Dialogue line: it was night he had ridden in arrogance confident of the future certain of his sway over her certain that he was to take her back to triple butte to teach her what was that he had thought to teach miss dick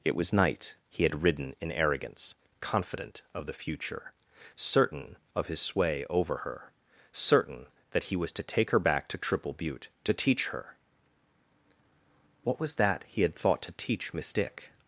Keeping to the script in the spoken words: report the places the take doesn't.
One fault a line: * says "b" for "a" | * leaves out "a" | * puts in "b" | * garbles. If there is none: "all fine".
all fine